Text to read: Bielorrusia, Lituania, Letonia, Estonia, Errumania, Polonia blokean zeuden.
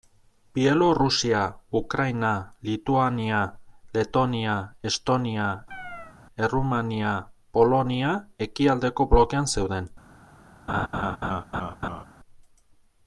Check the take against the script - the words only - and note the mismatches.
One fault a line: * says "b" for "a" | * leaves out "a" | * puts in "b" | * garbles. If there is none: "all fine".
* puts in "Ukraina"
* puts in "ekialdeko"